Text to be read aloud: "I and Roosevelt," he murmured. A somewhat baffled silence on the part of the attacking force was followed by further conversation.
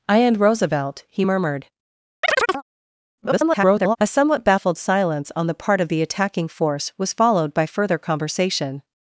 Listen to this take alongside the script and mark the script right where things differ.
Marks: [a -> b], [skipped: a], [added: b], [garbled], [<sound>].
"I and Roosevelt," he murmured. [chirp] [garbled] A somewhat baffled silence on the part of the attacking force was followed by further conversation.